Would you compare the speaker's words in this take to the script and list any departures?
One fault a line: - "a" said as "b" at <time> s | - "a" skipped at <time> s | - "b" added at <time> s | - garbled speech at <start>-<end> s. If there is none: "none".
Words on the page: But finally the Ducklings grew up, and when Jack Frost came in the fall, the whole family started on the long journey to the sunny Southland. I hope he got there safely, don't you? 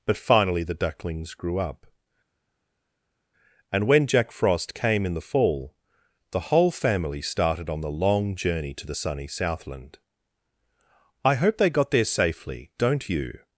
- "he" said as "they" at 11.6 s